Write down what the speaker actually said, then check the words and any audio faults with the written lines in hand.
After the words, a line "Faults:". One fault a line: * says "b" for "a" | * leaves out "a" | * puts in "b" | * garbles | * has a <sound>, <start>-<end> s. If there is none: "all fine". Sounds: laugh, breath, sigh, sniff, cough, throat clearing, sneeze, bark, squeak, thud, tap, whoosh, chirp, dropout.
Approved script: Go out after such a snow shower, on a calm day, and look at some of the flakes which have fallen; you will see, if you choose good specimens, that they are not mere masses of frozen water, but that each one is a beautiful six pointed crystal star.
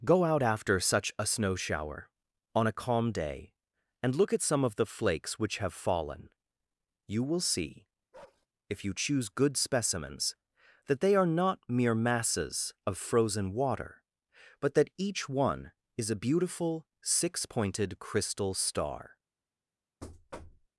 Go out after such a snow shower, on a calm day, and look at some of the flakes which have fallen; you will see, if you choose good specimens, that they are not mere masses of frozen water, but that each one is a beautiful six pointed crystal star.
Faults:
* has a bark, 8.1-8.5 s
* has a thud, 20.0-20.7 s